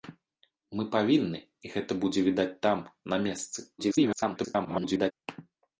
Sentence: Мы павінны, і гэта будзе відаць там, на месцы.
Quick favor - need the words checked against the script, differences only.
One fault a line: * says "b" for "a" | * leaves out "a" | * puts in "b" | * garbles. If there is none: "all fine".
* garbles